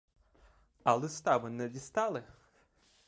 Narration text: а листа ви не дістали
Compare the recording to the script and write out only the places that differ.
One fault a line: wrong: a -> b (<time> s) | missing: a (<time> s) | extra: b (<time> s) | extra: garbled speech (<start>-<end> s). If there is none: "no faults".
no faults